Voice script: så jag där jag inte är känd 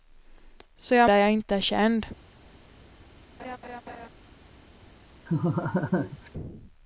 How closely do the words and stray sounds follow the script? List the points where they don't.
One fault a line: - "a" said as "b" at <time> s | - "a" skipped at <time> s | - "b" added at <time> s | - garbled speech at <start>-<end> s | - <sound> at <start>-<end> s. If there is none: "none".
- laugh at 3.4-4.1 s
- laugh at 5.3-6.3 s